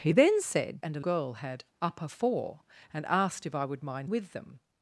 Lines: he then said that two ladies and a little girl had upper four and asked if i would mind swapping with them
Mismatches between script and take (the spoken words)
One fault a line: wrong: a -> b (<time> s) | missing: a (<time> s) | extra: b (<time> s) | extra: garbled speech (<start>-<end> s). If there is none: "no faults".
missing: that two ladies (0.8 s)
missing: little (1.0 s)
missing: swapping (4.1 s)